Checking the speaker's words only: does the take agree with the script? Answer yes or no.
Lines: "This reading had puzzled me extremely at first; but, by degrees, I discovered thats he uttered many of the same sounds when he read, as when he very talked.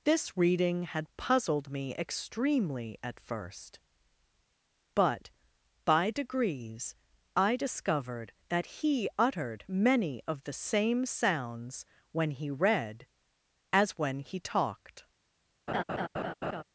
no